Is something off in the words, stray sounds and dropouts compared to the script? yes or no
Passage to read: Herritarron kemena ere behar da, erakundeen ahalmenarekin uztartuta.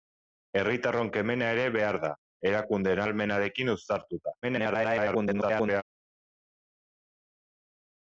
yes